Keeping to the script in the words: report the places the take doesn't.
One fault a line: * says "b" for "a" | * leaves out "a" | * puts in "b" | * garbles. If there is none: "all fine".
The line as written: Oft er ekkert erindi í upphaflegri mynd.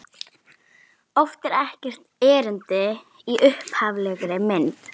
all fine